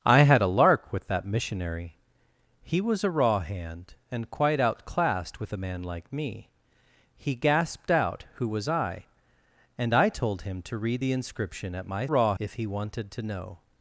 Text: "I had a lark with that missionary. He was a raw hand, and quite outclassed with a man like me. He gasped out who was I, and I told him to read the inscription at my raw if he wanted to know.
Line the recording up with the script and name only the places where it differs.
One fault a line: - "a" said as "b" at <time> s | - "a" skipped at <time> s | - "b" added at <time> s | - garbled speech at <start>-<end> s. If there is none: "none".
none